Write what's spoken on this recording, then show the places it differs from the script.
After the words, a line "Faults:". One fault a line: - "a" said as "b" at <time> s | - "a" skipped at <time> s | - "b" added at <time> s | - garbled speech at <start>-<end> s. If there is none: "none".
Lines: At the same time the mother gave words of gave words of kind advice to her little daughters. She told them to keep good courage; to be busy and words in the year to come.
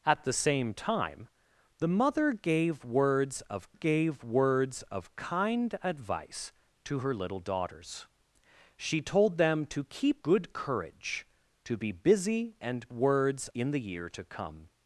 At the same time the mother gave words of gave words of kind advice to her little daughters. She told them to keep good courage; to be busy and words in the year to come.
Faults:
none